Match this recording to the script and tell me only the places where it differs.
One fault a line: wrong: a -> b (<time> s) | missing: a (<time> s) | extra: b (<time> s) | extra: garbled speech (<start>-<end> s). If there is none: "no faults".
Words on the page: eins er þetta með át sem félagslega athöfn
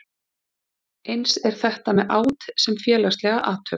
no faults